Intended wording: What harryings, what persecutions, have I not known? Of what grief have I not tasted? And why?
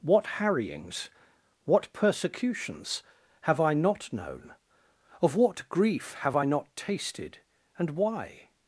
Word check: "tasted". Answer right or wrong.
right